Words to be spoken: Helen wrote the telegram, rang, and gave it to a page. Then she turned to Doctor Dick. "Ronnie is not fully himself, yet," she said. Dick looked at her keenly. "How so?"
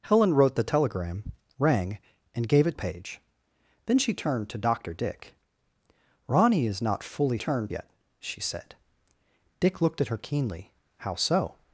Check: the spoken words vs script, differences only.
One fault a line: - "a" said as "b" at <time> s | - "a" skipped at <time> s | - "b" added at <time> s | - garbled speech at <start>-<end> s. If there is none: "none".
- "to" skipped at 2.8 s
- "himself" said as "turned" at 7.4 s